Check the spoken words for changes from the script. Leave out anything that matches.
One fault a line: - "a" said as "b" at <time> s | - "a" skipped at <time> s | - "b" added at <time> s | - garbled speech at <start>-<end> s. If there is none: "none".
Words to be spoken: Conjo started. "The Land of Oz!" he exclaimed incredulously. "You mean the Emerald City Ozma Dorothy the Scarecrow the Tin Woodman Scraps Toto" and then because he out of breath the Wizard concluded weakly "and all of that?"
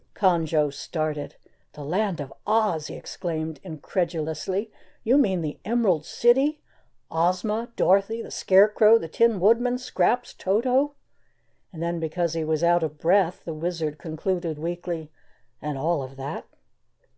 - "was" added at 12.4 s